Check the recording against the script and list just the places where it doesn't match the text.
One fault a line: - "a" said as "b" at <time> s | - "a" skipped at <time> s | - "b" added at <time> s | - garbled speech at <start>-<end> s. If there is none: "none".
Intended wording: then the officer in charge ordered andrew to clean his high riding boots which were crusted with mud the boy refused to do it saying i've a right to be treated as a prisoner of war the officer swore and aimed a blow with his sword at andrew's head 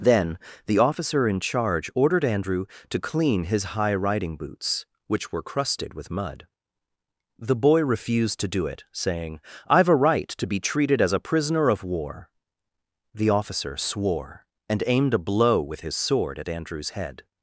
none